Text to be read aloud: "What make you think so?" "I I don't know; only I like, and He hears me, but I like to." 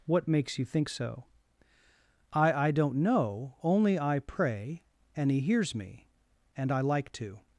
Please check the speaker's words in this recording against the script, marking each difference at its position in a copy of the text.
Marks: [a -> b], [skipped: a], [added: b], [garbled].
"What [make -> makes] you think so?" "I I don't know; only I [like, -> pray] and He hears me, [but -> and] I like to."